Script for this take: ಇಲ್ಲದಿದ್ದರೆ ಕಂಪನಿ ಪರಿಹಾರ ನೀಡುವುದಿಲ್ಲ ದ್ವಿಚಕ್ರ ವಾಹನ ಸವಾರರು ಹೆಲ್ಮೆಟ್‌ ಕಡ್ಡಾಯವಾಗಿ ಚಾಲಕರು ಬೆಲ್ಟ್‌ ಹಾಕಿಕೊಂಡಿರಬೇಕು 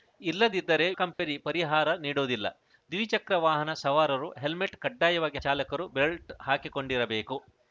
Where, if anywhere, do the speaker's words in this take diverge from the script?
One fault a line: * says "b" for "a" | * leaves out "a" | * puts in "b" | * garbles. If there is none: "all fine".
all fine